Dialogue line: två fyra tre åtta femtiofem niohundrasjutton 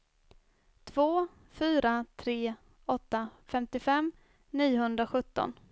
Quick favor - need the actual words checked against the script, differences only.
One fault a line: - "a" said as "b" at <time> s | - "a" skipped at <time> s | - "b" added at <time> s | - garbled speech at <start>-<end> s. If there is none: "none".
none